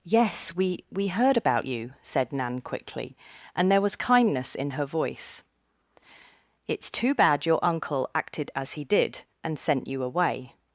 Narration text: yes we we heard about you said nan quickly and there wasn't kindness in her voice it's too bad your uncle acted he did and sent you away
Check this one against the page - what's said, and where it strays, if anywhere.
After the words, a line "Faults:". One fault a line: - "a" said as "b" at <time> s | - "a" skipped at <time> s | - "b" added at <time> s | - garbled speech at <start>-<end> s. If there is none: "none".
yes we we heard about you said nan quickly and there was kindness in her voice it's too bad your uncle acted as he did and sent you away
Faults:
- "wasn't" said as "was" at 3.8 s
- "as" added at 8.5 s